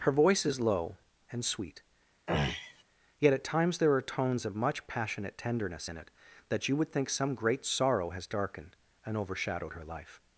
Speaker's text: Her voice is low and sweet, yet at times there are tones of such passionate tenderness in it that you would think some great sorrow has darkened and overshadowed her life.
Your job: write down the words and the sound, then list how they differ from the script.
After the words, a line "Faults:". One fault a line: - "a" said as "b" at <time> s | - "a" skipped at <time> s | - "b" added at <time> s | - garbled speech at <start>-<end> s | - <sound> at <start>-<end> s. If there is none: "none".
Her voice is low and sweet, yet at times there are tones of much passionate tenderness in it that you would think some great sorrow has darkened and overshadowed her life.
Faults:
- throat clearing at 2.3-2.8 s
- "such" said as "much" at 4.5 s